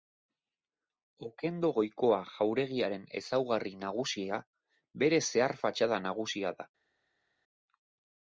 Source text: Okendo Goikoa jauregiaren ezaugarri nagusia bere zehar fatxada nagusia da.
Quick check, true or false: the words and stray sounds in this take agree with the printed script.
true